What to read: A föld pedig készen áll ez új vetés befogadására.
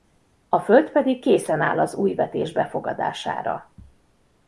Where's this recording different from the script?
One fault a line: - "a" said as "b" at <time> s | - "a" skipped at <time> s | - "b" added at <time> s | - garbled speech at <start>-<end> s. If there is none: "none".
- "ez" said as "az" at 1.8 s